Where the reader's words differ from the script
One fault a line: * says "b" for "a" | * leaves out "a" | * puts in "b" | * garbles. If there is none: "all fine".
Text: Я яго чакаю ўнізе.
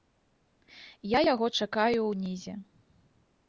all fine